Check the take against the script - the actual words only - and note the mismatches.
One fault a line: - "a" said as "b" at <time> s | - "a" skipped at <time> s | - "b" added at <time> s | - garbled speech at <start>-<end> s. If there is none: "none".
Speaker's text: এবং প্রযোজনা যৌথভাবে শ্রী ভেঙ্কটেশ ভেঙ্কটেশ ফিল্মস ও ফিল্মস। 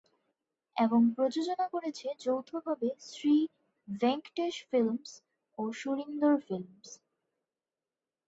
- "করেছে" added at 1.7 s
- "ভেঙ্কটেশ" skipped at 4.5 s
- "সুরিন্দর" added at 5.7 s